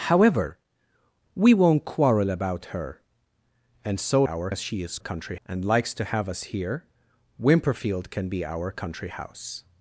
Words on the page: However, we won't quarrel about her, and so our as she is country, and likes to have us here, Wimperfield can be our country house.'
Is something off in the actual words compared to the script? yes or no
no